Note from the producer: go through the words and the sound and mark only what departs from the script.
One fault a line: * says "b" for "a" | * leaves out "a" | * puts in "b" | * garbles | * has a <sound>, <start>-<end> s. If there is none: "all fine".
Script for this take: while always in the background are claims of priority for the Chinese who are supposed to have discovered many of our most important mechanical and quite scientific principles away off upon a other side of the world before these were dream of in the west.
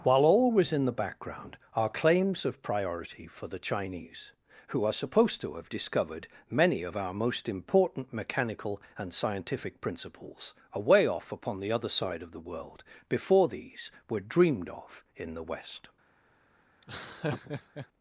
* leaves out "quite"
* says "the" for "a"
* says "dreamed" for "dream"
* has a laugh, 16.8-17.9 s